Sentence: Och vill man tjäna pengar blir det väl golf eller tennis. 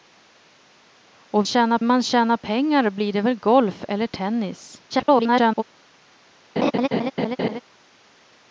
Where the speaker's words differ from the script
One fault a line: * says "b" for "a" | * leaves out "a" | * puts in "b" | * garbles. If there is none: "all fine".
* says "tjäna" for "vill"
* garbles